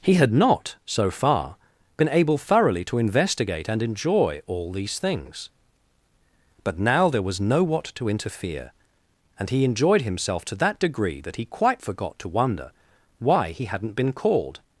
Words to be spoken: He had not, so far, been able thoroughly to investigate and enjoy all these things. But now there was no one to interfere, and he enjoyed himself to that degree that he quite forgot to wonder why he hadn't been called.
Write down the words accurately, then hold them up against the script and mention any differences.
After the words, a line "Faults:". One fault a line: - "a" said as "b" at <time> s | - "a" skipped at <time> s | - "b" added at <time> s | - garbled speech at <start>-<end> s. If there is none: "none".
He had not, so far, been able thoroughly to investigate and enjoy all these things. But now there was no what to interfere, and he enjoyed himself to that degree that he quite forgot to wonder why he hadn't been called.
Faults:
- "one" said as "what" at 7.6 s